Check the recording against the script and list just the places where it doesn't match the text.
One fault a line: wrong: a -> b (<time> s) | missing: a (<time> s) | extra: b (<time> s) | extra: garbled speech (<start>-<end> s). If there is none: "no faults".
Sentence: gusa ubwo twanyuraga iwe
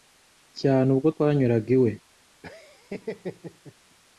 wrong: gusa -> cyane (0.6 s)